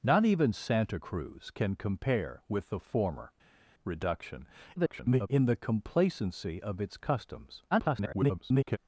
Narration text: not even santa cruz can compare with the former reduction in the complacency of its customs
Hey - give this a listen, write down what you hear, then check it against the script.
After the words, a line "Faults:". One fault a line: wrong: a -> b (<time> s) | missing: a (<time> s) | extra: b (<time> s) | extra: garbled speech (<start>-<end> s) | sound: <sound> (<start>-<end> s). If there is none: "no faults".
not even santa cruz can compare with the former reduction [garbled] in the complacency of its customs [garbled]
Faults:
extra: garbled speech (4.8-5.3 s)
extra: garbled speech (7.7-8.8 s)